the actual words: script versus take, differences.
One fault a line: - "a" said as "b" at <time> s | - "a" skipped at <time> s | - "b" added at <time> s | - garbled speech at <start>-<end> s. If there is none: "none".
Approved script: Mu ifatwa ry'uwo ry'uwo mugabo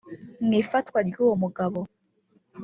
- "ry'uwo" skipped at 1.4 s